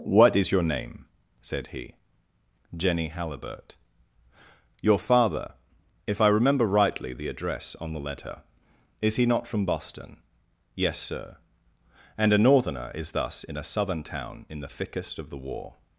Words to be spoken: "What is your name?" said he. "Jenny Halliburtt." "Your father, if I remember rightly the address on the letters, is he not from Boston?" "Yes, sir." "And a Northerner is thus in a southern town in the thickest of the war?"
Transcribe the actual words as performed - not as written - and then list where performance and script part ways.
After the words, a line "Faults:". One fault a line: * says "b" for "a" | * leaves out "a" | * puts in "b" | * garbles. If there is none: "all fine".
"What is your name?" said he. "Jenny Halliburtt." "Your father, if I remember rightly the address on the letter, is he not from Boston?" "Yes, sir." "And a Northerner is thus in a southern town in the thickest of the war?"
Faults:
* says "letter" for "letters"